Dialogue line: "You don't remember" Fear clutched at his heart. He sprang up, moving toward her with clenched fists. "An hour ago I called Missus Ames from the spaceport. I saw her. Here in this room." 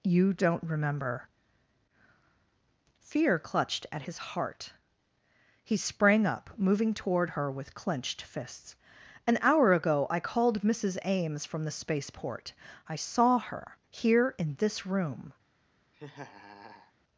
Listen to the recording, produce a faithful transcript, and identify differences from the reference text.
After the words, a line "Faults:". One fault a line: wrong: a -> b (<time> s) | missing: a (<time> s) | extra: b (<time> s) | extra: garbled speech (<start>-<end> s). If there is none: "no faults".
"You don't remember" Fear clutched at his heart. He sprang up, moving toward her with clenched fists. "An hour ago I called Missus Ames from the spaceport. I saw her. Here in this room."
Faults:
no faults